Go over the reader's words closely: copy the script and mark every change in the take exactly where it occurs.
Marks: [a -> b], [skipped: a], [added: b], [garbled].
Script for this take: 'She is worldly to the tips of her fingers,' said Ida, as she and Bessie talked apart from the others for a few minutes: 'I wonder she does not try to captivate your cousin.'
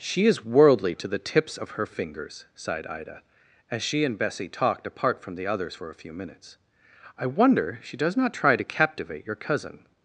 'She is worldly to the tips of her fingers,' [said -> sighed] Ida, as she and Bessie talked apart from the others for a few minutes: 'I wonder she does not try to captivate your cousin.'